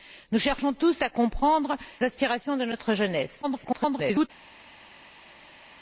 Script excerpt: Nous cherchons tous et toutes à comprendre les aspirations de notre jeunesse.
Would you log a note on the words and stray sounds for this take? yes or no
yes